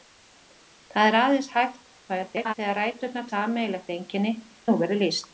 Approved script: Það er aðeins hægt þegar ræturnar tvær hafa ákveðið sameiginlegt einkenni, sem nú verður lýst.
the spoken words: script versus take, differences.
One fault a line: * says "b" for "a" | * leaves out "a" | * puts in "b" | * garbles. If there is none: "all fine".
* garbles
* leaves out "tvær hafa ákveðið"
* leaves out "sem"